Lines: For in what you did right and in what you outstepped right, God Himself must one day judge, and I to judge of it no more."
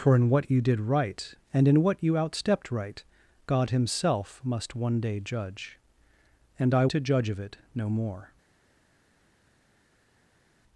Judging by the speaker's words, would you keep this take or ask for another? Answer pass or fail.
pass